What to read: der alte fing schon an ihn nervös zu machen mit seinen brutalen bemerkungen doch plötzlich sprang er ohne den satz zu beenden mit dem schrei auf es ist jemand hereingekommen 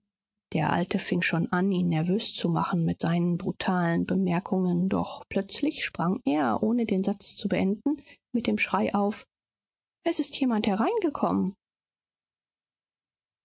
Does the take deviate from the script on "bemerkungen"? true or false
false